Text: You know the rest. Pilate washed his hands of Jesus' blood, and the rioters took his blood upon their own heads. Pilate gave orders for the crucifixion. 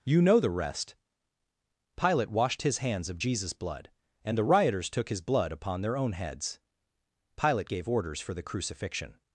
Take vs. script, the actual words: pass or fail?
pass